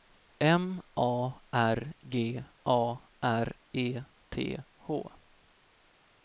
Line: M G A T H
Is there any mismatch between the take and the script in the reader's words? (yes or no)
yes